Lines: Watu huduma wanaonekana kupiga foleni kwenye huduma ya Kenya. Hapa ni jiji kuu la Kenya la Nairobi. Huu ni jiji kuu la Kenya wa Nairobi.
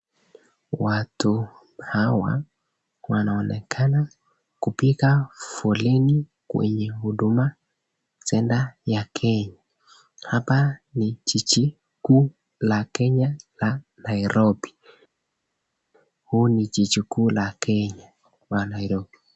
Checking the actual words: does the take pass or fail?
fail